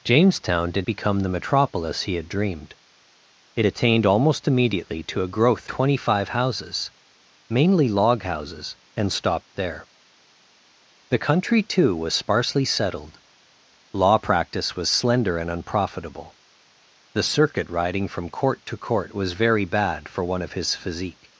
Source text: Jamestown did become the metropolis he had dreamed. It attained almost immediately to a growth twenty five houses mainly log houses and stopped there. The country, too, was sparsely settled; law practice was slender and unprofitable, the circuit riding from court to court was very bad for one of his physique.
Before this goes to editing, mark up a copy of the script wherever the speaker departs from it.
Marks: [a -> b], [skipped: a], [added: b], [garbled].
Jamestown did become the metropolis he had dreamed. It attained almost immediately to a growth twenty five houses mainly log houses and stopped there. The country, too, was sparsely settled; law practice was slender and unprofitable, the circuit riding from court to court was very bad for one of his physique.